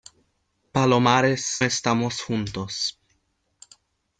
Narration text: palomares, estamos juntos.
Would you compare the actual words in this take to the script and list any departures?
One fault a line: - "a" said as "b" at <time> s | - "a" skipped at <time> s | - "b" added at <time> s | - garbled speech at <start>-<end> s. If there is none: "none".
none